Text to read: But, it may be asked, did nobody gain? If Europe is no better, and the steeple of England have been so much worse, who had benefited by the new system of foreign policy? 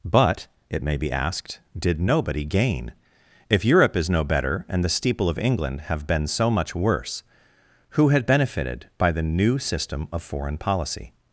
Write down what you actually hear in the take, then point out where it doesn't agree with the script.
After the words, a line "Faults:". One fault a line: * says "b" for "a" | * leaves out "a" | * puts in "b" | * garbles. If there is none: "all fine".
But, it may be asked, did nobody gain? If Europe is no better, and the steeple of England have been so much worse, who had benefited by the new system of foreign policy?
Faults:
all fine